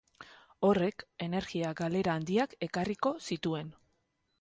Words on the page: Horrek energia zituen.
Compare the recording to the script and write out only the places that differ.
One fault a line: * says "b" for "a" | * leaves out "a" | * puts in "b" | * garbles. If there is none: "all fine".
* puts in "galera handiak ekarriko"